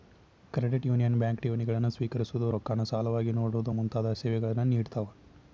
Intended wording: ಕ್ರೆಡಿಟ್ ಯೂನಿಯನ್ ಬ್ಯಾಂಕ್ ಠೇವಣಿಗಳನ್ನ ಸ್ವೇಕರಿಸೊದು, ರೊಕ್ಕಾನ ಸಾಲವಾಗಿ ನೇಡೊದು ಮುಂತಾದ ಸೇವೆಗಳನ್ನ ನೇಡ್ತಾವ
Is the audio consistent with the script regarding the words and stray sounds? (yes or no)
yes